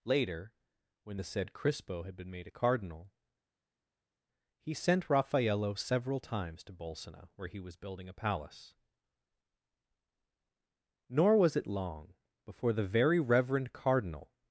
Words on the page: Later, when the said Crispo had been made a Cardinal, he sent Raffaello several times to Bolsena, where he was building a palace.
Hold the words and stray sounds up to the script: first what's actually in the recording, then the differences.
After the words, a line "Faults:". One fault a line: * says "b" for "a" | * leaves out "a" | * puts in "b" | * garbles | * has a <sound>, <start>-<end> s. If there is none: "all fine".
Later, when the said Crispo had been made a Cardinal, he sent Raffaello several times to Bolsena, where he was building a palace. Nor was it long before the very reverend Cardinal
Faults:
* puts in "Nor was it long before the very reverend Cardinal"